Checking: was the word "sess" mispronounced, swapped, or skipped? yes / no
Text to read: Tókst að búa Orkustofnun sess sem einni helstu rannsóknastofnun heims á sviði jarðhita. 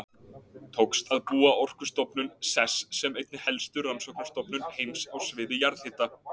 no